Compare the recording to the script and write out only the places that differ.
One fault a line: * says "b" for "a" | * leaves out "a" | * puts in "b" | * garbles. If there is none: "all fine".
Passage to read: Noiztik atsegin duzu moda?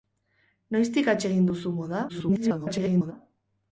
* garbles